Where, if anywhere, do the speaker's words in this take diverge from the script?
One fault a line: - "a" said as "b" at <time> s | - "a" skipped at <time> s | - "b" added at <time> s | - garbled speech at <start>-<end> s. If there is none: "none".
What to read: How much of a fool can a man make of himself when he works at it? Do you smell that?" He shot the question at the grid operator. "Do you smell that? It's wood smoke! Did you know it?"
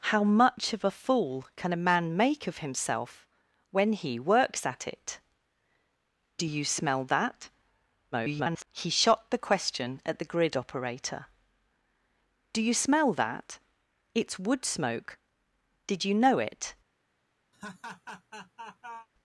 - garbled speech at 8.1-8.7 s